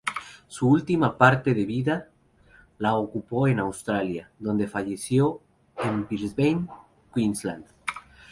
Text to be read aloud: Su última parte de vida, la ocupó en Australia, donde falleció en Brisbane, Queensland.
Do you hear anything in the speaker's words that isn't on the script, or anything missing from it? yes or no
no